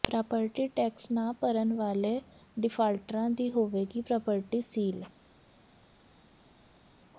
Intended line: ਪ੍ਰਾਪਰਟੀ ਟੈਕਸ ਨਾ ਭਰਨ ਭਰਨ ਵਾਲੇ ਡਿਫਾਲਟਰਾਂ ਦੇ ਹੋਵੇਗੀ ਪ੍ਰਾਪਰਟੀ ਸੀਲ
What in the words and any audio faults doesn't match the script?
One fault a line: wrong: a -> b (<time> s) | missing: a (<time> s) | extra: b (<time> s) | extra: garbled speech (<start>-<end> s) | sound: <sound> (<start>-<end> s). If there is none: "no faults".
missing: ਭਰਨ (1.7 s)
wrong: ਦੇ -> ਦੀ (3.3 s)